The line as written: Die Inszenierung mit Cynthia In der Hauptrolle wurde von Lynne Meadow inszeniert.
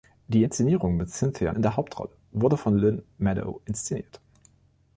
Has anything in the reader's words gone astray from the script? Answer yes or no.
no